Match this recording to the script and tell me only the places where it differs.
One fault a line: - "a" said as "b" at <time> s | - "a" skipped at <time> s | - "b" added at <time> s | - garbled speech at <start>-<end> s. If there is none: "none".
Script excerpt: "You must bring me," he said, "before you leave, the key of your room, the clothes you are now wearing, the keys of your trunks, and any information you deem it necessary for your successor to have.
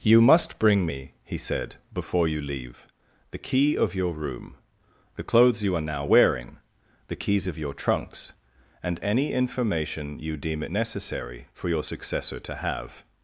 none